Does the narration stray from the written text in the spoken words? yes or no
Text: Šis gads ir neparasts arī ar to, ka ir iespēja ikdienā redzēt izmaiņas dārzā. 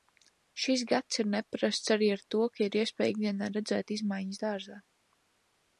no